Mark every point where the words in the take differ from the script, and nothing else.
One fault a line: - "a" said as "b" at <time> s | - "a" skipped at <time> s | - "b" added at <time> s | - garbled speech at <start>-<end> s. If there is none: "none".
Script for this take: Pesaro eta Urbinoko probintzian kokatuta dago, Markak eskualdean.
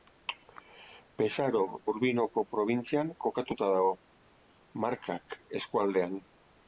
- "eta" skipped at 1.6 s